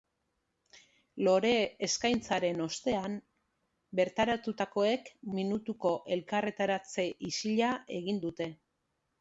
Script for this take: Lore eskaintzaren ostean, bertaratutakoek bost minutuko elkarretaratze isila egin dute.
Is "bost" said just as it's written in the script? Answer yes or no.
no